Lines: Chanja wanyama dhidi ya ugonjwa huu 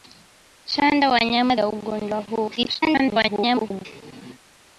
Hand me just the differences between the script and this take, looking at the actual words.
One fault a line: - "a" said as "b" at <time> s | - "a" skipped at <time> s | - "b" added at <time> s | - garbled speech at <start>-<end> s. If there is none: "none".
- "dhidi" skipped at 1.6 s
- garbled speech at 2.6-3.9 s